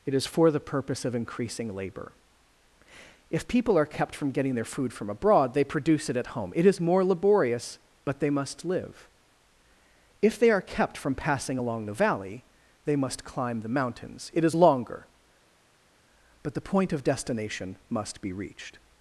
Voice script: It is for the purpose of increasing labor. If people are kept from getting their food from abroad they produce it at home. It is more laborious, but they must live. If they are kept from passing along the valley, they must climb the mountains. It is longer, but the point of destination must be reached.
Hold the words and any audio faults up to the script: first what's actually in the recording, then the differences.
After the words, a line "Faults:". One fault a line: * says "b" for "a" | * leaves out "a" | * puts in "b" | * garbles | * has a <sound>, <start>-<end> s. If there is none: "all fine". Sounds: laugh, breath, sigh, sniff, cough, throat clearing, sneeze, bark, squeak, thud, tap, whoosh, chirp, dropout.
It is for the purpose of increasing labor. If people are kept from getting their food from abroad they produce it at home. It is more laborious, but they must live. If they are kept from passing along the valley, they must climb the mountains. It is longer, but the point of destination must be reached.
Faults:
all fine